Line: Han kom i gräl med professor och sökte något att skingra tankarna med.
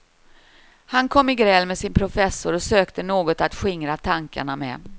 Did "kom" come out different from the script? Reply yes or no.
no